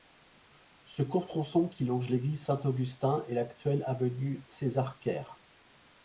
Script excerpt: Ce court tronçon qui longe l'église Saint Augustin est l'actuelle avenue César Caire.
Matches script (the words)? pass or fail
pass